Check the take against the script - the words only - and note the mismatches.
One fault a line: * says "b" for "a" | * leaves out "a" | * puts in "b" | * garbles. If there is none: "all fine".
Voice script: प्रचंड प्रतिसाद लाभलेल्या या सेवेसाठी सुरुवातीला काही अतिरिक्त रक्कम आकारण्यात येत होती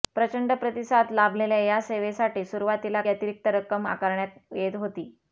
* leaves out "काही"